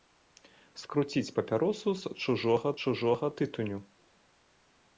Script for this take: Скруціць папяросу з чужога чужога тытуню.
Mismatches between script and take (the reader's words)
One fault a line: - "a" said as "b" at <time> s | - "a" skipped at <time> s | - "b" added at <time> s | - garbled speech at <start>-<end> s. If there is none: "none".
none